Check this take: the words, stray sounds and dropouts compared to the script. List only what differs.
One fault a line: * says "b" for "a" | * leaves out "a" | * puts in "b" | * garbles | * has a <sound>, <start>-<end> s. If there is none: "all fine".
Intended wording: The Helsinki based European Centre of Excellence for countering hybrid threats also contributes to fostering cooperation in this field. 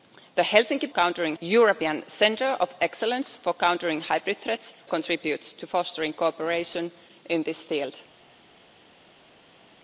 * says "countering" for "based"
* leaves out "also"